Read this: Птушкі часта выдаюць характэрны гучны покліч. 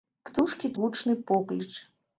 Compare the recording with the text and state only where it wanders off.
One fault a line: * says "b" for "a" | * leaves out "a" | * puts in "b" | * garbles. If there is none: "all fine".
* leaves out "часта выдаюць характэрны"